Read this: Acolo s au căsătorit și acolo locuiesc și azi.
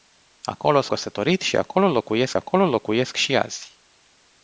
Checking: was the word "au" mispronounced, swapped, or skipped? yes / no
yes